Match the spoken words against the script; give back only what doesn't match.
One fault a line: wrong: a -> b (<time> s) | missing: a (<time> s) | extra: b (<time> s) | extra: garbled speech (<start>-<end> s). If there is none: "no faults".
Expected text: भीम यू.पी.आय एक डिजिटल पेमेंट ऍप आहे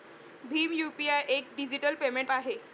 missing: ऍप (2.3 s)